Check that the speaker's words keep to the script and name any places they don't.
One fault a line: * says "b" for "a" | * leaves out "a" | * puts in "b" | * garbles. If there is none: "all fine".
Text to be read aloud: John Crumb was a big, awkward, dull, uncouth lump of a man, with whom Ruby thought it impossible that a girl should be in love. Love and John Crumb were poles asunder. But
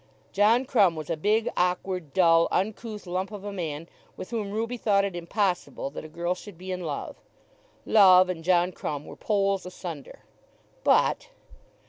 all fine